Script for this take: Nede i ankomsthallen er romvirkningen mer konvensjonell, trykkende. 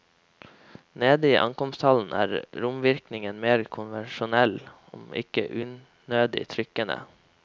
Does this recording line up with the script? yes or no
no